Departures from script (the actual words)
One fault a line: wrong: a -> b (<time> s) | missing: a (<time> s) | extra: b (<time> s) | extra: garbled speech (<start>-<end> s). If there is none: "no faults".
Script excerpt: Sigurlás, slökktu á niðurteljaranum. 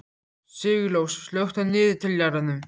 no faults